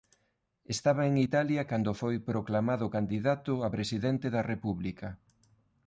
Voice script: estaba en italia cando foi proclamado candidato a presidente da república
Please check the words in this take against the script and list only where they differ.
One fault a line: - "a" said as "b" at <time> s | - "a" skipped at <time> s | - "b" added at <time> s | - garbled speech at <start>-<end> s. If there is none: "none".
none